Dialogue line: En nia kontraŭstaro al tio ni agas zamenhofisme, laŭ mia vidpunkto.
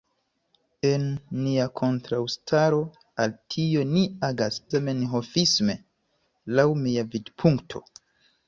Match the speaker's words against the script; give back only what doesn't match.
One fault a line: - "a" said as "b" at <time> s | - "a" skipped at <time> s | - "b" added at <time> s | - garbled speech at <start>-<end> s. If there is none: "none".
none